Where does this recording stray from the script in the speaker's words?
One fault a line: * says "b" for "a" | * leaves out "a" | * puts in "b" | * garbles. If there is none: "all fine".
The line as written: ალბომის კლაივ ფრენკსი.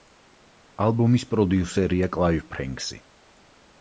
* puts in "პროდიუსერია"